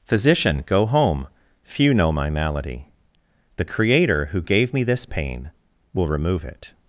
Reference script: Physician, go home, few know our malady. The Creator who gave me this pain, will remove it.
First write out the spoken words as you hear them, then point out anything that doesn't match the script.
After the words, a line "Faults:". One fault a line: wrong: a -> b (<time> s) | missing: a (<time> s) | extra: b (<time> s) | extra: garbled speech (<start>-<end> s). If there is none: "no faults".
Physician, go home, few know my malady. The Creator who gave me this pain, will remove it.
Faults:
wrong: our -> my (2.1 s)